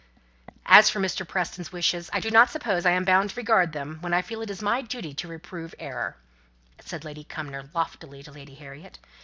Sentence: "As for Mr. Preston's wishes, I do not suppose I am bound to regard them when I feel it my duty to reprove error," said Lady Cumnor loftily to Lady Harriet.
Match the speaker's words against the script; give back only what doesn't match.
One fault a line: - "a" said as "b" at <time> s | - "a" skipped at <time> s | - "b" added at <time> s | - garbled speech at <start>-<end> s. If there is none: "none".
none